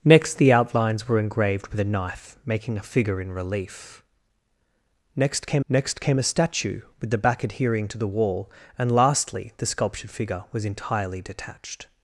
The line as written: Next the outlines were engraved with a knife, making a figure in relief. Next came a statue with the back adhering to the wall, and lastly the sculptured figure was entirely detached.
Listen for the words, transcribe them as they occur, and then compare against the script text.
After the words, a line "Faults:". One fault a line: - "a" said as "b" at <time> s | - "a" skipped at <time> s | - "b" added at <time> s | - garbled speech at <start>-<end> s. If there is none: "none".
Next the outlines were engraved with a knife, making a figure in relief. Next came next came a statue with the back adhering to the wall, and lastly the sculptured figure was entirely detached.
Faults:
- "next came" added at 5.7 s